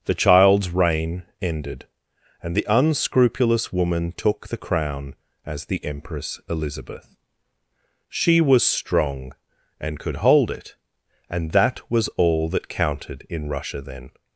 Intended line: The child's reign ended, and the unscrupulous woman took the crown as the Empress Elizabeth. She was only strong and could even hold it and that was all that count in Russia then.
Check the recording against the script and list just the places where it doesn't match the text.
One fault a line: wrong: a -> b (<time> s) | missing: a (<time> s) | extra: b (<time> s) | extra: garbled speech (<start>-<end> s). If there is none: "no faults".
missing: only (8.6 s)
missing: even (10.2 s)
wrong: count -> counted (12.7 s)